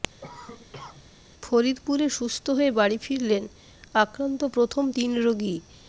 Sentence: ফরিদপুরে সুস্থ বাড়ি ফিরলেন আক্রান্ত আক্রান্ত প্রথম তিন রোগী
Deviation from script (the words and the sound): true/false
true